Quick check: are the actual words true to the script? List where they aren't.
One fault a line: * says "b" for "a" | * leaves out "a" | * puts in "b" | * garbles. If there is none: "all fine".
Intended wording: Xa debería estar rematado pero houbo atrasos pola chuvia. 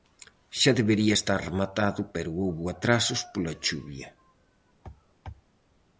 all fine